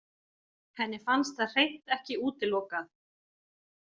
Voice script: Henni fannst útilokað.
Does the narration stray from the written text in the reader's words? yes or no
yes